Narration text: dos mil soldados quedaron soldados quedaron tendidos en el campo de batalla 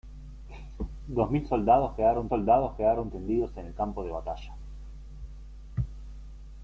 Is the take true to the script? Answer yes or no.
yes